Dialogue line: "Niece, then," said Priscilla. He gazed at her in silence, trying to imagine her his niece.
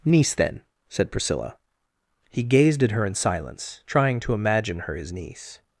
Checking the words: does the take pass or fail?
pass